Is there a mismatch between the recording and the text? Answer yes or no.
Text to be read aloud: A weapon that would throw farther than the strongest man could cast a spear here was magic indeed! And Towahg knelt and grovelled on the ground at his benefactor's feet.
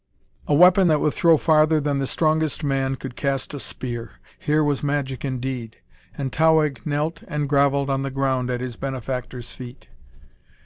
no